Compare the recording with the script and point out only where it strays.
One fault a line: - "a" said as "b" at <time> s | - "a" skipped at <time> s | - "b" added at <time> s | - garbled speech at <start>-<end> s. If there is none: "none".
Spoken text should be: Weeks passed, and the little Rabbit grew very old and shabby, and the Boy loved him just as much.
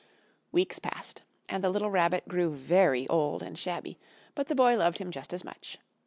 - "and" said as "but" at 4.3 s